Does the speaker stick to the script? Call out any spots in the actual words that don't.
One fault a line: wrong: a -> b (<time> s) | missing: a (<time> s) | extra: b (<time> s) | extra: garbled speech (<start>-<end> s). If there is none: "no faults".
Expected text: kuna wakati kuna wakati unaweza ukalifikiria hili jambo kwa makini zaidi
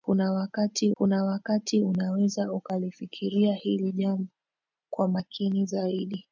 no faults